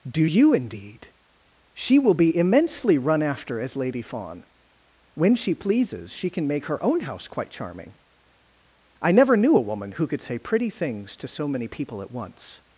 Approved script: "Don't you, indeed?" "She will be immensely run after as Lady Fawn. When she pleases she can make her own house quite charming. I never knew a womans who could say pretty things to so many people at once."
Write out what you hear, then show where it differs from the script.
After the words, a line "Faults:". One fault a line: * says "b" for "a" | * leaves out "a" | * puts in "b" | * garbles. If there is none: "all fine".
"Do you, indeed?" "She will be immensely run after as Lady Fawn. When she pleases she can make her own house quite charming. I never knew a woman who could say pretty things to so many people at once."
Faults:
* says "Do" for "Don't"
* says "woman" for "womans"